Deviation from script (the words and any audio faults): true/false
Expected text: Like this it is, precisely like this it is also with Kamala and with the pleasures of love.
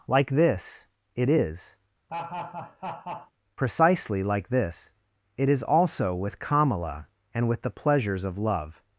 true